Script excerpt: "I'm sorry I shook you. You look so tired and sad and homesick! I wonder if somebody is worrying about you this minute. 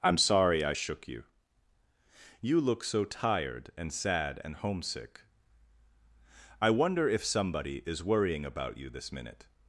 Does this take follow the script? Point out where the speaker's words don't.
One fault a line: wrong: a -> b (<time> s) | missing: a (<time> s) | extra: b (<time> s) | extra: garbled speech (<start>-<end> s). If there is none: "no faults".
no faults